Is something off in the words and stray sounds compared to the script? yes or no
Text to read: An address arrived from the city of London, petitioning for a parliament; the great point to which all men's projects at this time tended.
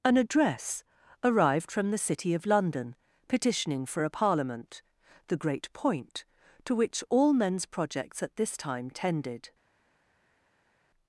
no